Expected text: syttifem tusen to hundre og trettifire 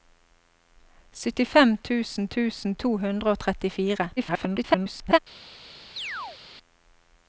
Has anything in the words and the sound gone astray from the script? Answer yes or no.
yes